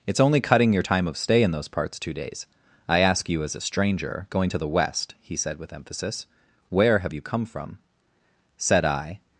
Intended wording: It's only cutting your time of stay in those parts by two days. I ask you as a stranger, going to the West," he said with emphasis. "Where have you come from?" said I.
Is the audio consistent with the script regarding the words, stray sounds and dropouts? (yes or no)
no